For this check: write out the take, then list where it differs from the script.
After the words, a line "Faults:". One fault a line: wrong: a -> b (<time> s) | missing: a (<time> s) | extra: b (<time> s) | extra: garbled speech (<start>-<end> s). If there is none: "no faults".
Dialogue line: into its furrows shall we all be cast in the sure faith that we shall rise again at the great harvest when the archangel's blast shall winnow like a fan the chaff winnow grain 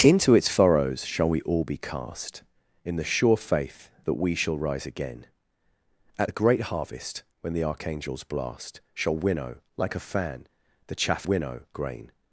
into its furrows shall we all be cast in the sure faith that we shall rise again at the great harvest when the archangel's blast shall winnow like a fan the chaff winnow grain
Faults:
no faults